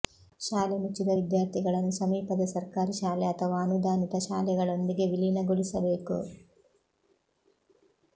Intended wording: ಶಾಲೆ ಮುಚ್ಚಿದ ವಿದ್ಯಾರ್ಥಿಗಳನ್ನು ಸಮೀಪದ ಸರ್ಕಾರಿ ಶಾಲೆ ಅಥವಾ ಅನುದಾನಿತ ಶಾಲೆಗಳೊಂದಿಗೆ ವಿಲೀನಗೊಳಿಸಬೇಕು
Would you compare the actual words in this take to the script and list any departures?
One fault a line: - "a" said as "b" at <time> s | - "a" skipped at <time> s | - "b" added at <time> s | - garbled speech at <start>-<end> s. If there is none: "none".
none